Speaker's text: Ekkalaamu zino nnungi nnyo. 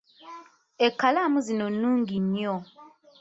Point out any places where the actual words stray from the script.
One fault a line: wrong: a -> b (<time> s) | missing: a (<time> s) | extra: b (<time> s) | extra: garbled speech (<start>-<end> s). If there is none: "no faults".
no faults